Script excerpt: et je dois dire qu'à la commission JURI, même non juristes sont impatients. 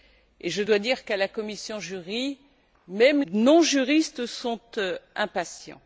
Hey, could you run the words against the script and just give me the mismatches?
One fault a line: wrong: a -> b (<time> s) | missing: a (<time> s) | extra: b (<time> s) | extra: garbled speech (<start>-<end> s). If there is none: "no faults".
no faults